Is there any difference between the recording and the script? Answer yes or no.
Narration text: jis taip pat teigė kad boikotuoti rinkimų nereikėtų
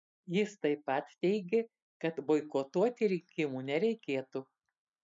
no